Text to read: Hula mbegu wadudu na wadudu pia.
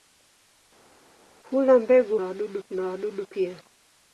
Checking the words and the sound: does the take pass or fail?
pass